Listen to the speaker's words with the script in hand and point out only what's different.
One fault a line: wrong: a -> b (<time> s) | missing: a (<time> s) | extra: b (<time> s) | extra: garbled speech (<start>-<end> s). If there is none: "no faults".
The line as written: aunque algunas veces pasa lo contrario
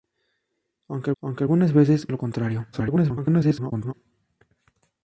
extra: aunque (1.2 s)
missing: pasa (2.1 s)
extra: garbled speech (2.7-3.9 s)